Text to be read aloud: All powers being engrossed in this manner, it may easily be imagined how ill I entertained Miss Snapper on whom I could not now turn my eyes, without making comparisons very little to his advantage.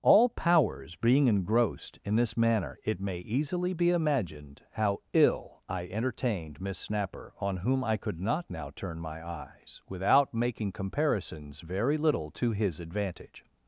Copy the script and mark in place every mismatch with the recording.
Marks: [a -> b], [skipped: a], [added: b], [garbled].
All powers being engrossed in this manner, it may easily be imagined how ill I entertained Miss Snapper on whom I could not now turn my eyes, without making comparisons very little to his advantage.